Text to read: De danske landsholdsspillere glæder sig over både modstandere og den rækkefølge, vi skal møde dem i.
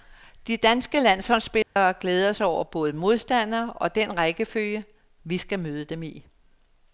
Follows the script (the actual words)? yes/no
yes